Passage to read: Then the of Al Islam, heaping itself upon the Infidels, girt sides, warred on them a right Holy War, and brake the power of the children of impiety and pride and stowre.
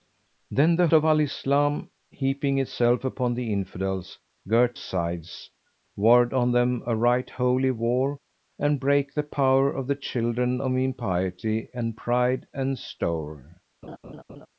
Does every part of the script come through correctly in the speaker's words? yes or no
yes